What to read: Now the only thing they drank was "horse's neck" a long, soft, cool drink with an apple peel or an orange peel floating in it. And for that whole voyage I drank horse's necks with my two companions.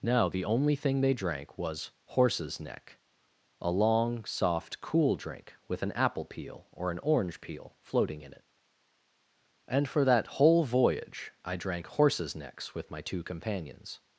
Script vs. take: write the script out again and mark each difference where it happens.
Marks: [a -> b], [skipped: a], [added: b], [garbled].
Now the only thing they drank was "horse's neck" a long, soft, cool drink with an apple peel or an orange peel floating in it. And for that whole voyage I drank horse's necks with my two companions.